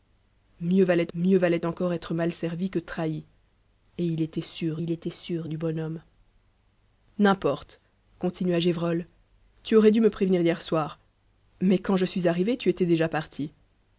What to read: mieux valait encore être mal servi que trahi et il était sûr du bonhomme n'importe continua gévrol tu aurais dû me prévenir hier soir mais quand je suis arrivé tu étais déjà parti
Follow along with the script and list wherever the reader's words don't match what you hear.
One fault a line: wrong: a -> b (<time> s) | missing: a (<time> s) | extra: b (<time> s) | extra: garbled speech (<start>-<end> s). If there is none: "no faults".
extra: mieux valait (1.1 s)
extra: il était sûr (4.8 s)